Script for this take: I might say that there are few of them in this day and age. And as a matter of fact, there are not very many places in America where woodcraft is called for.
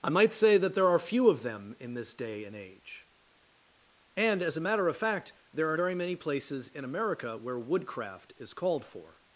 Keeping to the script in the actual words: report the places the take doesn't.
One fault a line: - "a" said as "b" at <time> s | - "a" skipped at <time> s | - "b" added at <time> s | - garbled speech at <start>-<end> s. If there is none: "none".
- "not" skipped at 5.8 s